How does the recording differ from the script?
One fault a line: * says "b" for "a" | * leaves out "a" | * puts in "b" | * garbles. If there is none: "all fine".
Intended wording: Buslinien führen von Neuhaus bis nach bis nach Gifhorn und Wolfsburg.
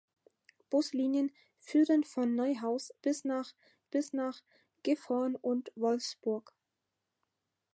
all fine